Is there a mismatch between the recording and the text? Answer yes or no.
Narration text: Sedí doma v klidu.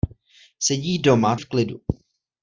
no